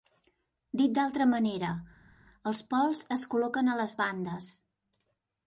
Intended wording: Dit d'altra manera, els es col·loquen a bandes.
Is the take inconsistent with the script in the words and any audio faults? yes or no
yes